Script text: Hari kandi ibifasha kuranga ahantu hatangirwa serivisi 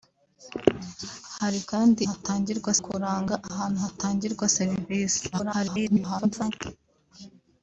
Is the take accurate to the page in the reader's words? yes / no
no